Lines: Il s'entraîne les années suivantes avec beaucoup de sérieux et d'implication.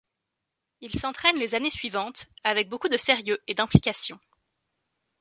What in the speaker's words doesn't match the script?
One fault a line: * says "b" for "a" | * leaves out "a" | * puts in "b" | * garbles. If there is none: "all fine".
all fine